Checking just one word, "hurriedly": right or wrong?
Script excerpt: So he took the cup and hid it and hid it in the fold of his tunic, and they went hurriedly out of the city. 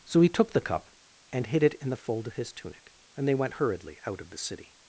right